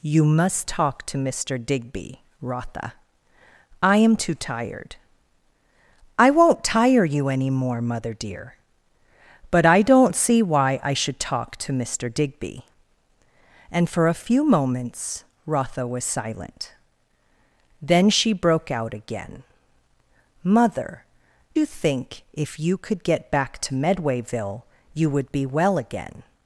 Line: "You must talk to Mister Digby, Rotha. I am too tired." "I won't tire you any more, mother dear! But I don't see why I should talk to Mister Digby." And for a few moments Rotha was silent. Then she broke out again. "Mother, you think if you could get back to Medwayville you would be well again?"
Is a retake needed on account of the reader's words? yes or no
no